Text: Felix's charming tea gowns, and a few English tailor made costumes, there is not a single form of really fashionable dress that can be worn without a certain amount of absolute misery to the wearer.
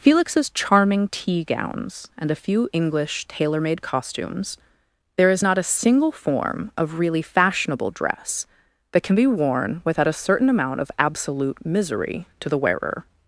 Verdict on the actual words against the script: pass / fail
pass